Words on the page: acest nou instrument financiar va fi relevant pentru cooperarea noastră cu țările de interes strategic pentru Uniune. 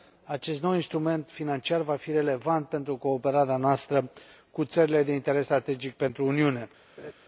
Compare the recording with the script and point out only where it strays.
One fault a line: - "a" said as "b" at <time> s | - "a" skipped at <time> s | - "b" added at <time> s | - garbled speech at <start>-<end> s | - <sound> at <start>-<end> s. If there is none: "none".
- laugh at 7.0-7.1 s